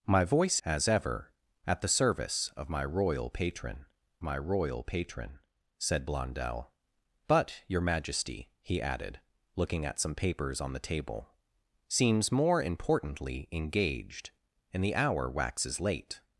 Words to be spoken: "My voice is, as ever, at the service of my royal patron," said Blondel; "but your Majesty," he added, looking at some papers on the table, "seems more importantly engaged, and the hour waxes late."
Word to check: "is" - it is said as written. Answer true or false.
false